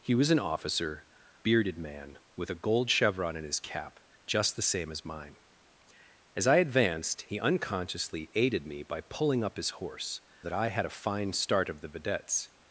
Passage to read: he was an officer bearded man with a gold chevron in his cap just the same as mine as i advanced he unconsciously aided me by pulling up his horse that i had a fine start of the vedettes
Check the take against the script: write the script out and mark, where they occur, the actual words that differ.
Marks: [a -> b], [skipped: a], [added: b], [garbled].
he was an officer bearded man with a gold chevron in his cap just the same as mine as i advanced he unconsciously aided me by pulling up his horse that i had a fine start of the vedettes